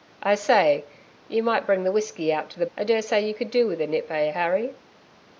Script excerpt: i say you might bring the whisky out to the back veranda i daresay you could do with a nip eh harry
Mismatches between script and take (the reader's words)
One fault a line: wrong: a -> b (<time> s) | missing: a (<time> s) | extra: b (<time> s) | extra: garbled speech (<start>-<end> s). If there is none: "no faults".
missing: back veranda (2.6 s)